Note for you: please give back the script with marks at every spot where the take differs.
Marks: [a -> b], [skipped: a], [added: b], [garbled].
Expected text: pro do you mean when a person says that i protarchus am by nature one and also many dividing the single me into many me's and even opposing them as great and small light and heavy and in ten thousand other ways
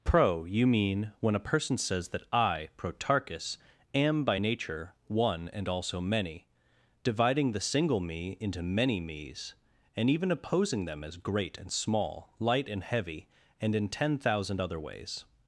pro [skipped: do] you mean when a person says that i protarchus am by nature one and also many dividing the single me into many me's and even opposing them as great and small light and heavy and in ten thousand other ways